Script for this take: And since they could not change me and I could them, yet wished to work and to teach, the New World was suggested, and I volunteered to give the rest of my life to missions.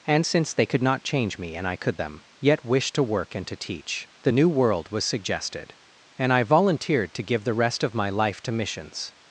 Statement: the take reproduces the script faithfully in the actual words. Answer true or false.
true